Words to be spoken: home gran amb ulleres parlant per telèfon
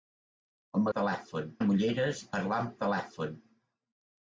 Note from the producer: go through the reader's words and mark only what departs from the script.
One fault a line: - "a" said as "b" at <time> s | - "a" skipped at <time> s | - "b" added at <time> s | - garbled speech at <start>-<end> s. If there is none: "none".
- "gran" said as "telèfon" at 1.0 s
- "per" skipped at 2.7 s